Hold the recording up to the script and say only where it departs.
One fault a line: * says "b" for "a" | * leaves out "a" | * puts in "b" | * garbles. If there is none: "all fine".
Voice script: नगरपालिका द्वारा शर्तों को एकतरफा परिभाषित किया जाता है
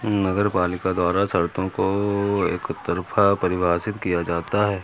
all fine